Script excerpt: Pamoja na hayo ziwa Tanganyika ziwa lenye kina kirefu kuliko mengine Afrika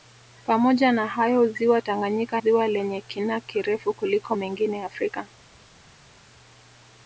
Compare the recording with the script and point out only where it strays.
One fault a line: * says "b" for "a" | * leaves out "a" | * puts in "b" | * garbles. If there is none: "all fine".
all fine